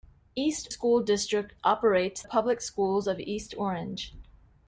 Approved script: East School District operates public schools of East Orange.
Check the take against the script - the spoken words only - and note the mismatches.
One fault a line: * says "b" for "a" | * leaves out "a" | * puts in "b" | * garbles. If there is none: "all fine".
all fine